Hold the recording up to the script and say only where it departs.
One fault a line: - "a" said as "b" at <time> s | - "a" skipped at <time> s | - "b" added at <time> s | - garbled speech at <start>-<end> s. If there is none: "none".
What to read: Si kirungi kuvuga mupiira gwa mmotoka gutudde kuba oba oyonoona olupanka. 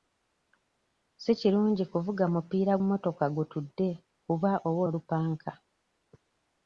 - "gwa" skipped at 2.7 s
- "oyonoona" skipped at 4.8 s